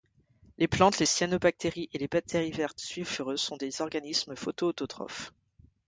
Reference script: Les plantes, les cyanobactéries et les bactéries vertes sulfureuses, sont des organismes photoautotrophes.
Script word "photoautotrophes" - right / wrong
right